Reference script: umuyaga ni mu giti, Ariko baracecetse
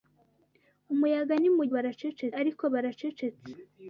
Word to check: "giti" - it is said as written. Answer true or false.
false